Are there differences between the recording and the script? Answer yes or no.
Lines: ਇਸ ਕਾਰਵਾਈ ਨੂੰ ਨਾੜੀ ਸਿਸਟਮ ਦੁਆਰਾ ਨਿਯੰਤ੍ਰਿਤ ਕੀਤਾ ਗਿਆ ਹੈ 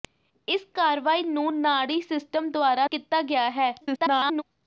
yes